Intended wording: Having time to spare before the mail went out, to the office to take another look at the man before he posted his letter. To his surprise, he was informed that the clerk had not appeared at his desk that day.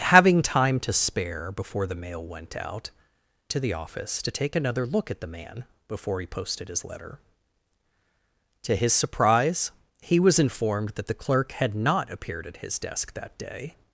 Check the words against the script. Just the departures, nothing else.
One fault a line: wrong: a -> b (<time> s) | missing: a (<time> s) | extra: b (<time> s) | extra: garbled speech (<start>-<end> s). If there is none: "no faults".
no faults